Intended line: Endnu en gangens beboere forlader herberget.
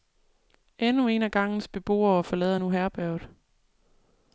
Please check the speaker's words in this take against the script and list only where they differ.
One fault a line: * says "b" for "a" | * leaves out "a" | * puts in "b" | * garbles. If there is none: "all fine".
* puts in "af"
* puts in "nu"